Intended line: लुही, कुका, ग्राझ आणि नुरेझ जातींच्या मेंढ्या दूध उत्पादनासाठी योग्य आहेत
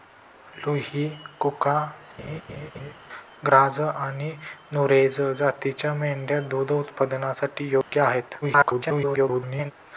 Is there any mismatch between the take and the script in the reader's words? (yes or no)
yes